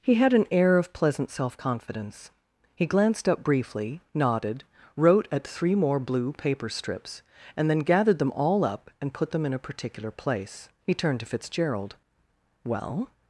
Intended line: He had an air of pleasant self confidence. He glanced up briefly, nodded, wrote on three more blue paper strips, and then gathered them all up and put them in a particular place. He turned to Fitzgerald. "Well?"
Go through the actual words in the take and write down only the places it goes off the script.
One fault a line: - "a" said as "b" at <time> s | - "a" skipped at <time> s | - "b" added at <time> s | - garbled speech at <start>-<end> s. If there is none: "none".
- "on" said as "at" at 5.3 s